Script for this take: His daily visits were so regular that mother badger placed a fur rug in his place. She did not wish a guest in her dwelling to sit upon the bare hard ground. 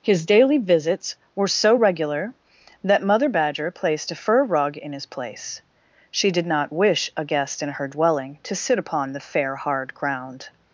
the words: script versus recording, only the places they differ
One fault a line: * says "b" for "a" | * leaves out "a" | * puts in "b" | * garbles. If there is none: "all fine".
* says "fair" for "bare"